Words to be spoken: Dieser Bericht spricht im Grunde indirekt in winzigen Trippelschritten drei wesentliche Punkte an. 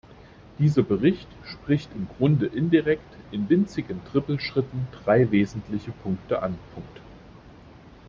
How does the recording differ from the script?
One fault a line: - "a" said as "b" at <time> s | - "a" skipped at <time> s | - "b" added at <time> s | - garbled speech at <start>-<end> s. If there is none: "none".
none